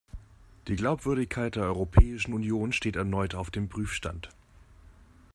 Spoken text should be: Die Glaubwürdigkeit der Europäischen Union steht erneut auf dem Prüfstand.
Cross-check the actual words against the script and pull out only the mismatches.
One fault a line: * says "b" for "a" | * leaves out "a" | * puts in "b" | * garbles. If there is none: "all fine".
all fine